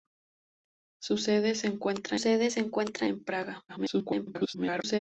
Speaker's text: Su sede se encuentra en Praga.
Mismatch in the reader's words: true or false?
true